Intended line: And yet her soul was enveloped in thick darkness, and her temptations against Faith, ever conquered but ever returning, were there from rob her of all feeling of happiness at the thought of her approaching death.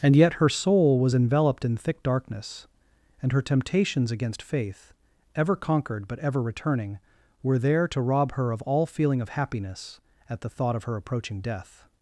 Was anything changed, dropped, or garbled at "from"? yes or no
yes